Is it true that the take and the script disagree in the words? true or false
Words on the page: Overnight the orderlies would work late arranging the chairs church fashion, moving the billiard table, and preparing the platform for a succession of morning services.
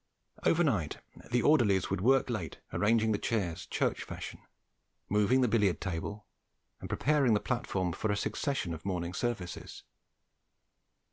false